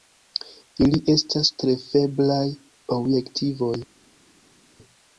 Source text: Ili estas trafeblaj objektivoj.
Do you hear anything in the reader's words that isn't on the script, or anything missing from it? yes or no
no